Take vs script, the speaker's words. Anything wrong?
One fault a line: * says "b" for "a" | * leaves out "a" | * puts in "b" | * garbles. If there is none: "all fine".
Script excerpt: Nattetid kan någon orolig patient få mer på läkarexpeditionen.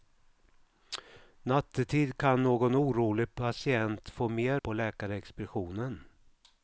all fine